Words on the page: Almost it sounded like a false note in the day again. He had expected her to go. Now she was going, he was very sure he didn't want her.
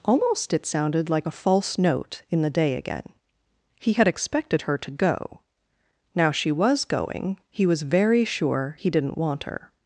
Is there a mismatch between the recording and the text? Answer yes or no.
no